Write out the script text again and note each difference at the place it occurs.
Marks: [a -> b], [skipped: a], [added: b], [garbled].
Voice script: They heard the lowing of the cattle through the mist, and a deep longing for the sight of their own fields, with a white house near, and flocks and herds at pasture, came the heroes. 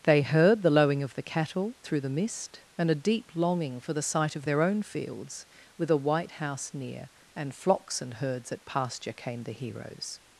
They heard the lowing of the cattle through the mist, and a deep longing for the sight of their own fields, with a white house near, and flocks and herds at pasture, came the heroes.